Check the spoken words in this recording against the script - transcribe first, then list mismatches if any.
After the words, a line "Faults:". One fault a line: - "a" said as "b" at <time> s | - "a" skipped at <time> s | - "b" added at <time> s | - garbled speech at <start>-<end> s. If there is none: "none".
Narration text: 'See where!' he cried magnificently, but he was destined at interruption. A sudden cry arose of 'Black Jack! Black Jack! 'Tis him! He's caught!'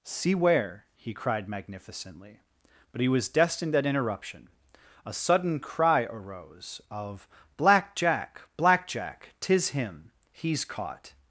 'See where!' he cried magnificently, but he was destined at interruption. A sudden cry arose of 'Black Jack! Black Jack! 'Tis him! He's caught!'
Faults:
none